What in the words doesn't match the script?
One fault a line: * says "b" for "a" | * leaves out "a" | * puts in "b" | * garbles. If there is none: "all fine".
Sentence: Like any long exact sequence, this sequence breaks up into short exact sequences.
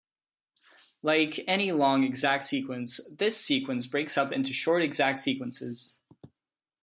all fine